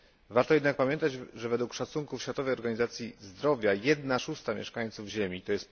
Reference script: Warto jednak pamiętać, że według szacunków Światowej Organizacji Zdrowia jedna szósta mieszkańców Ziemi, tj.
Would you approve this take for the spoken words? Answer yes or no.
yes